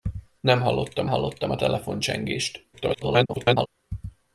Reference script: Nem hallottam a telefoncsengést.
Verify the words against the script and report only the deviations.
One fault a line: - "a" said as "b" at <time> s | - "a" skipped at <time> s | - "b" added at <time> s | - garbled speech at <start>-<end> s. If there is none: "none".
- "hallottam" added at 1.1 s
- garbled speech at 2.7-3.7 s